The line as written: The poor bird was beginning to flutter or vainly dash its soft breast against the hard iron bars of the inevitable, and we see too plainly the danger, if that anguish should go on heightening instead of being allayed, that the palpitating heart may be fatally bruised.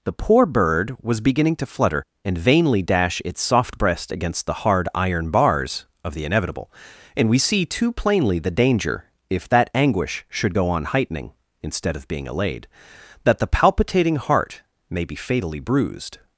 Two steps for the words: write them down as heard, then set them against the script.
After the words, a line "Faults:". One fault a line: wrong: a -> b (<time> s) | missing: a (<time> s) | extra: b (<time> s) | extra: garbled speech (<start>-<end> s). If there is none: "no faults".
The poor bird was beginning to flutter and vainly dash its soft breast against the hard iron bars of the inevitable, and we see too plainly the danger, if that anguish should go on heightening instead of being allayed, that the palpitating heart may be fatally bruised.
Faults:
wrong: or -> and (2.2 s)